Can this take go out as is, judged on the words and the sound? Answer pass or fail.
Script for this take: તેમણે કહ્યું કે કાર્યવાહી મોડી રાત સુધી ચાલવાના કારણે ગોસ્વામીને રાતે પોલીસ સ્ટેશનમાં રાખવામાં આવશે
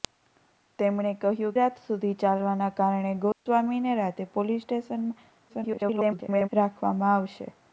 fail